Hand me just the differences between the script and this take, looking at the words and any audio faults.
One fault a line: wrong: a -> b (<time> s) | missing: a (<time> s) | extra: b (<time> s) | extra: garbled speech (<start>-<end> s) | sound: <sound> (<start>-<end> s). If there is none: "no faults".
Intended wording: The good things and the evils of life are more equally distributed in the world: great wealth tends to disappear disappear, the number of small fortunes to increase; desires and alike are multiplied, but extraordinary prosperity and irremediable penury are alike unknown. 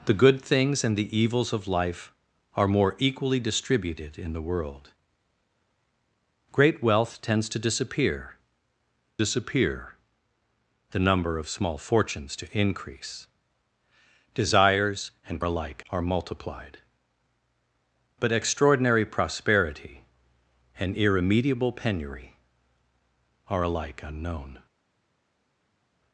no faults